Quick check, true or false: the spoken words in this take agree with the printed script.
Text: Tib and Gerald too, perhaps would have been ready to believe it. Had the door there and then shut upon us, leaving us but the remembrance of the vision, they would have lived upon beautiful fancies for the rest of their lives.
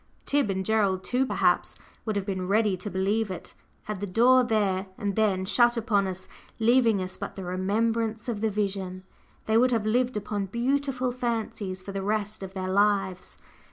true